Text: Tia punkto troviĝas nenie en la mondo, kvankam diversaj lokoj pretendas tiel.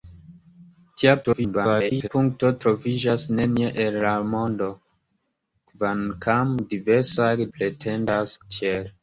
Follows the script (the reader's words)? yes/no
no